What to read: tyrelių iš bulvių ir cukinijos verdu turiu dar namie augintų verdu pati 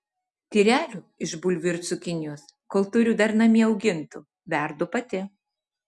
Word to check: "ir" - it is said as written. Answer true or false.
true